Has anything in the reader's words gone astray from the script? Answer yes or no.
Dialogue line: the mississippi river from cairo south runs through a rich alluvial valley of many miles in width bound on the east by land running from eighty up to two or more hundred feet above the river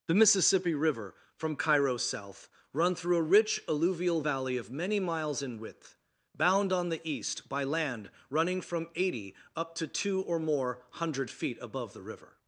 yes